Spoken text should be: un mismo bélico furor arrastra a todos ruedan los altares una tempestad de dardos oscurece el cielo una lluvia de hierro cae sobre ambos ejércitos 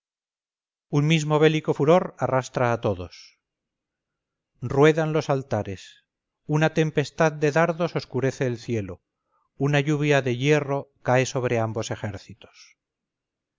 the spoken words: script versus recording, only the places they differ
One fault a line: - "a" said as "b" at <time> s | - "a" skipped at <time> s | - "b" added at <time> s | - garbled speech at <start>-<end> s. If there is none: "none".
none